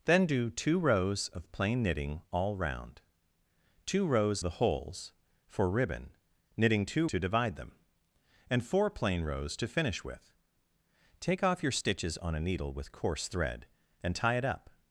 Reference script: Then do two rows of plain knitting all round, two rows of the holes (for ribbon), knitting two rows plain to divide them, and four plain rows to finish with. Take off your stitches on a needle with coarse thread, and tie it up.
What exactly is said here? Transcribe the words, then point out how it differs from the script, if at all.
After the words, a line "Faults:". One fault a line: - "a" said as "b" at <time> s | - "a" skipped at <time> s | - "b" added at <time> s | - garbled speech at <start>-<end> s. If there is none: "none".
Then do two rows of plain knitting all round, two rows the holes (for ribbon), knitting two to divide them, and four plain rows to finish with. Take off your stitches on a needle with coarse thread, and tie it up.
Faults:
- "of" skipped at 4.4 s
- "rows plain" skipped at 7.1 s